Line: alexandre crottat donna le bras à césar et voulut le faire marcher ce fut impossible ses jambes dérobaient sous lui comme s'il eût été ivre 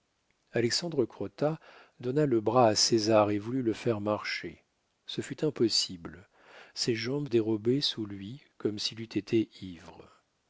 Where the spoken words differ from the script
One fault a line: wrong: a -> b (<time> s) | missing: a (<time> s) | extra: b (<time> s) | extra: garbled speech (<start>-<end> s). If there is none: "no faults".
no faults